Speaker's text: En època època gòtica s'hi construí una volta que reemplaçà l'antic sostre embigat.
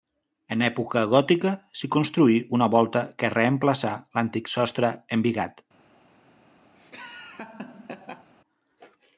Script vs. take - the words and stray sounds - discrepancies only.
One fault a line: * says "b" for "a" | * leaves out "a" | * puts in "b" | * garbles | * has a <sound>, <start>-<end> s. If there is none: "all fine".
* leaves out "època"
* has a laugh, 6.8-8.3 s